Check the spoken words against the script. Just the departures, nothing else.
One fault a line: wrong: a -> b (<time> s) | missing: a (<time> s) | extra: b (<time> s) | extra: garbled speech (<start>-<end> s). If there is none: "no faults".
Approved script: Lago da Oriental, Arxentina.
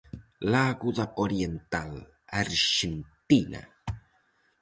no faults